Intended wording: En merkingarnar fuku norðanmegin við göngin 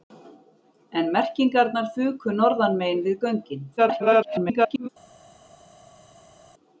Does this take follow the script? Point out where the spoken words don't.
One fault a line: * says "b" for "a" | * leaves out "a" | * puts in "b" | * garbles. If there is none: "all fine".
* garbles